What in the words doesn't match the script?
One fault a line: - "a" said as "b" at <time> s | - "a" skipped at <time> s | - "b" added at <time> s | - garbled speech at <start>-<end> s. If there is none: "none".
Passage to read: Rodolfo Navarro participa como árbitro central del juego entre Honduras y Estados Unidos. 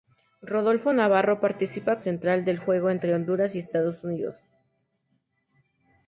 - "como árbitro" skipped at 2.0 s